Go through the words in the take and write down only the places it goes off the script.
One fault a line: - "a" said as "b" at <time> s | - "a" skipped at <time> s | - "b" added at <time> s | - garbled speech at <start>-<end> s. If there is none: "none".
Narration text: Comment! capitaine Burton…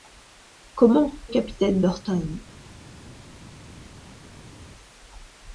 none